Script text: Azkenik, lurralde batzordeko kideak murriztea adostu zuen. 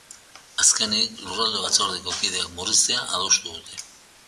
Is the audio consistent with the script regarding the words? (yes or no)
no